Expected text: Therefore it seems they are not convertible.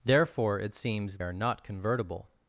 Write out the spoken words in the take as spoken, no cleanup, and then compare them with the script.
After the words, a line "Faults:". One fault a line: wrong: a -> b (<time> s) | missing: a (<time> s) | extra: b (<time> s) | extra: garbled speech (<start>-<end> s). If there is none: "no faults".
Therefore it seems are not convertible.
Faults:
missing: they (1.2 s)